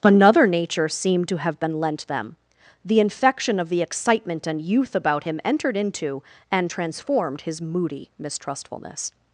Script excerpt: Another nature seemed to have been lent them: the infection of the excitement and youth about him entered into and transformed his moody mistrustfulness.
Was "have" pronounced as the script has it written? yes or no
yes